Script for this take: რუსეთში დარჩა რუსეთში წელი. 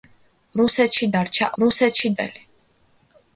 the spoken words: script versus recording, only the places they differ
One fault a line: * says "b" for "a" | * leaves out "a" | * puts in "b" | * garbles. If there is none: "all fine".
all fine